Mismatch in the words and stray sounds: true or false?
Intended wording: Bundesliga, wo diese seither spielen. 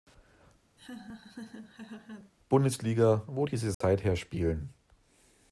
true